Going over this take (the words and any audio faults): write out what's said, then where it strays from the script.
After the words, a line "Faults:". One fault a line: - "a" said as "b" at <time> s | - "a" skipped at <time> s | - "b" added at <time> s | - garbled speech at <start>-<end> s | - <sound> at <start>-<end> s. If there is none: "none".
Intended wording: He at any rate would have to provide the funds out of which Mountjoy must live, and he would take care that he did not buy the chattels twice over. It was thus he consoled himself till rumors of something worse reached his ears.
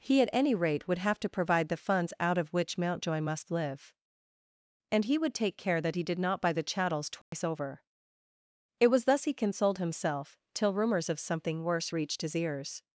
He at any rate would have to provide the funds out of which Mountjoy must live, and he would take care that he did not buy the chattels twice over. It was thus he consoled himself till rumors of something worse reached his ears.
Faults:
- dropout at 7.2-7.3 s